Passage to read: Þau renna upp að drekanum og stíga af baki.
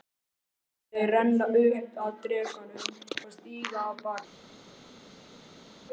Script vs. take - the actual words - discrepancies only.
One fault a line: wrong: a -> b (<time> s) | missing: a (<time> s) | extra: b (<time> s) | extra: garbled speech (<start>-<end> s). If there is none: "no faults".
no faults